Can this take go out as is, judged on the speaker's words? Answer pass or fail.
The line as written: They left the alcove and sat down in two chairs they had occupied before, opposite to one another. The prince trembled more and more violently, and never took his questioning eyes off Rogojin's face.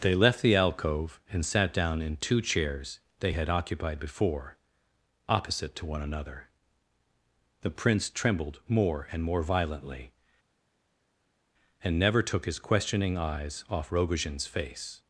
pass